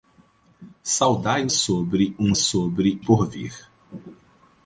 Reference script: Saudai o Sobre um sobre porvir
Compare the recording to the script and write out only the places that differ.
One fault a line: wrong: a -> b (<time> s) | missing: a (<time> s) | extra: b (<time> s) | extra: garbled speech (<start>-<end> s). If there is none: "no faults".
no faults